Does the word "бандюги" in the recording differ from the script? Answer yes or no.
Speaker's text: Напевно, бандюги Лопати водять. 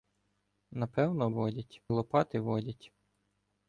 yes